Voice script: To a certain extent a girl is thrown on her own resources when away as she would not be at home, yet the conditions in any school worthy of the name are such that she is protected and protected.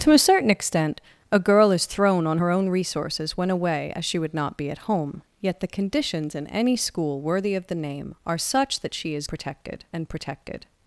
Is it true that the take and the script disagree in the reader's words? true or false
false